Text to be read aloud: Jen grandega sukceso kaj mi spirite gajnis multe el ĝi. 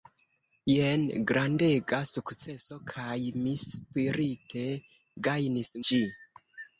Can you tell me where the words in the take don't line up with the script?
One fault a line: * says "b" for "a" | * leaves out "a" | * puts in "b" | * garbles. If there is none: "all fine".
* leaves out "multe el"